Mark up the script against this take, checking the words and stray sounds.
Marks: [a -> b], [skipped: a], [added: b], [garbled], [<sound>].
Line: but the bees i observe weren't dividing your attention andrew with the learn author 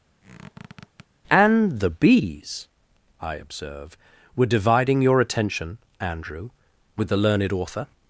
[squeak] [but -> and] the bees i observe [weren't -> were] dividing your attention andrew with the [learn -> learned] author